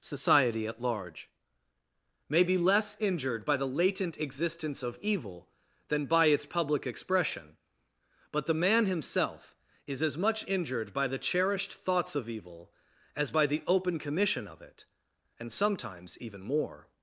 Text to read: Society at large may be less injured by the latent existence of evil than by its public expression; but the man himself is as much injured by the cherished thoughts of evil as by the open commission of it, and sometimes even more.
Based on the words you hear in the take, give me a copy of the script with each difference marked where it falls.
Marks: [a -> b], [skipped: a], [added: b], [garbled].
Society at large may be less injured by the latent existence of evil than by its public expression; but the man himself is as much injured by the cherished thoughts of evil as by the open commission of it, and sometimes even more.